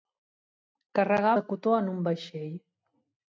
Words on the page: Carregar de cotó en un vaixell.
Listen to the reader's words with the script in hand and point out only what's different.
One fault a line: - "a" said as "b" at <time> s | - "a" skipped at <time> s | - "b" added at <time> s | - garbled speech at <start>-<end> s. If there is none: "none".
none